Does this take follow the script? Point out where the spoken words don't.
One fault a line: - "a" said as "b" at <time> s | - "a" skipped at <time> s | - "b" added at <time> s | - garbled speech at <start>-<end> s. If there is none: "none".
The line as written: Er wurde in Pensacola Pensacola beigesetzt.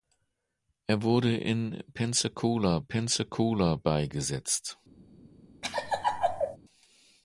none